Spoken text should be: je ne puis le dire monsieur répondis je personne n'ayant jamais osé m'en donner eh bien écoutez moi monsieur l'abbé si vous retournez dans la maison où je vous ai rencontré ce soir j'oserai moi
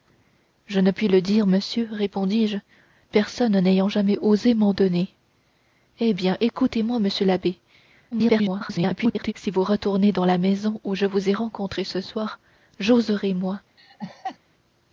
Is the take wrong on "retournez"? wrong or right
right